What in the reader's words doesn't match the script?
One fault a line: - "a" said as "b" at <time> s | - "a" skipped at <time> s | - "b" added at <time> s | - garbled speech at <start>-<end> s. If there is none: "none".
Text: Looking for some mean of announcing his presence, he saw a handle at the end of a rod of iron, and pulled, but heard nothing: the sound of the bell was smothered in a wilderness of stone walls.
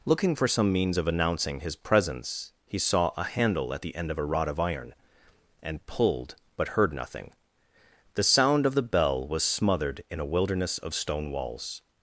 - "mean" said as "means" at 0.7 s